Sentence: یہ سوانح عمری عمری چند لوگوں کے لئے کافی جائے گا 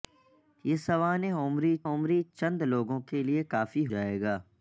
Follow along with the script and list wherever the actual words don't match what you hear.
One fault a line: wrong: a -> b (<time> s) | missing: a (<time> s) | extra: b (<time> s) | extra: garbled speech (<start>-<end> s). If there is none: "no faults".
no faults